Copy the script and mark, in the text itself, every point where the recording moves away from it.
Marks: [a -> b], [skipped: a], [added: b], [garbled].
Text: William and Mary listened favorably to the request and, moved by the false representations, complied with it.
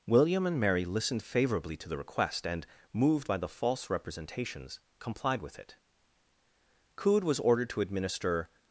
William and Mary listened favorably to the request and, moved by the false representations, complied with it. [added: Coode was ordered to administer]